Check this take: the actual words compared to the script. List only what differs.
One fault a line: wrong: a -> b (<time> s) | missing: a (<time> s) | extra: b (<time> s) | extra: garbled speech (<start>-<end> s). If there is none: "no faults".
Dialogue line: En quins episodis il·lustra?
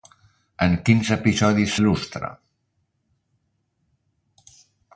no faults